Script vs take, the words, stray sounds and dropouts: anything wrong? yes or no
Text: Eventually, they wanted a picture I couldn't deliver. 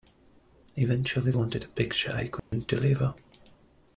yes